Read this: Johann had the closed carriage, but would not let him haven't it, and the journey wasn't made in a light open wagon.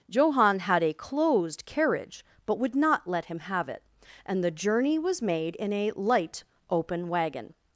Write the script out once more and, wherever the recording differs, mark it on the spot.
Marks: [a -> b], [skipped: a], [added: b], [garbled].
Johann had [the -> a] closed carriage, but would not let him [haven't -> have] it, and the journey [wasn't -> was] made in a light open wagon.